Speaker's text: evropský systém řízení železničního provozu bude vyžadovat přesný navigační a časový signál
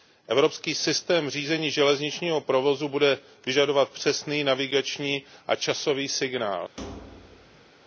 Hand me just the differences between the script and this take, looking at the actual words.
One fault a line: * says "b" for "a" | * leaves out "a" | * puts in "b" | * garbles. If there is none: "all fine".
all fine